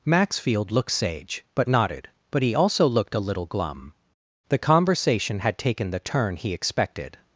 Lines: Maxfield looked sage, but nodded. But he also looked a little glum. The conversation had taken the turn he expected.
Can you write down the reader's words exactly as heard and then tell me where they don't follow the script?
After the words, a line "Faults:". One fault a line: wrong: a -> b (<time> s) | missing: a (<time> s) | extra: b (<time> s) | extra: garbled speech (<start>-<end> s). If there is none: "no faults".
Maxfield looked sage, but nodded. But he also looked a little glum. The conversation had taken the turn he expected.
Faults:
no faults